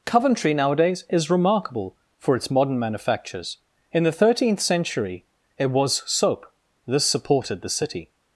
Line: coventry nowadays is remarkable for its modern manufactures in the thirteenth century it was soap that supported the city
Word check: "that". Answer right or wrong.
wrong